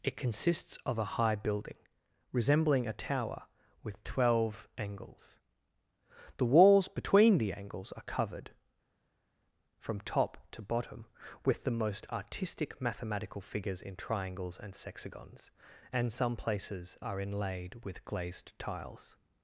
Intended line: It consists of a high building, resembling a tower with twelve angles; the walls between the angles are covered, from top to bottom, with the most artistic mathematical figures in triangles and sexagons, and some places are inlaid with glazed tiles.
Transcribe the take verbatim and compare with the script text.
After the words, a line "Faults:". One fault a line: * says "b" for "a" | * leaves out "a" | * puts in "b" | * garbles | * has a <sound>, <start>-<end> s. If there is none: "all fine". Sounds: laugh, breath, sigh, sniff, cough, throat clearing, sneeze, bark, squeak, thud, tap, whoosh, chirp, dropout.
It consists of a high building, resembling a tower with twelve angles; the walls between the angles are covered, from top to bottom, with the most artistic mathematical figures in triangles and sexagons, and some places are inlaid with glazed tiles.
Faults:
all fine